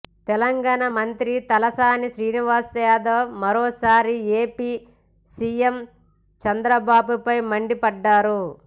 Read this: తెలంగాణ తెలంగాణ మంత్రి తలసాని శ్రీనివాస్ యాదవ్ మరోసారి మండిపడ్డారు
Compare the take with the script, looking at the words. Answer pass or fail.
fail